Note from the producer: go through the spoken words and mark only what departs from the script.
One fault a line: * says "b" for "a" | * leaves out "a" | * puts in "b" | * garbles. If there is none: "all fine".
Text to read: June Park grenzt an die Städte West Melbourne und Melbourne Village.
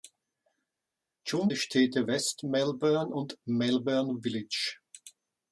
* leaves out "Park grenzt an"